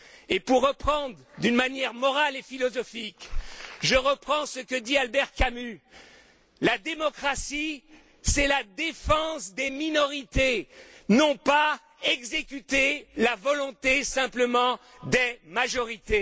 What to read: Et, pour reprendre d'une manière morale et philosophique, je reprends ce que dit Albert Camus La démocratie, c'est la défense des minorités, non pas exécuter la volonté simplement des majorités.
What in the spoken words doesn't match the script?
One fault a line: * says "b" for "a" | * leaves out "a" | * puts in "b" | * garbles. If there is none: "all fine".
all fine